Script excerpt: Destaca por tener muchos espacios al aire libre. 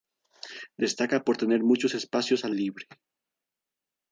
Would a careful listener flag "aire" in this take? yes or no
yes